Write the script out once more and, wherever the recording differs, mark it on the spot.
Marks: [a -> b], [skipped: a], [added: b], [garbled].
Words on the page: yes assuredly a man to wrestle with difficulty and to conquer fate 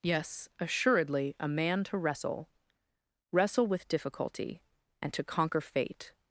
yes assuredly a man to wrestle [added: wrestle] with difficulty and to conquer fate